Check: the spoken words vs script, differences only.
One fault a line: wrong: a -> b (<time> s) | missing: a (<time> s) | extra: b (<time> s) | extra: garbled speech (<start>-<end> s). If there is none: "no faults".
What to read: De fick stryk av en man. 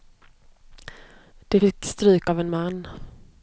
no faults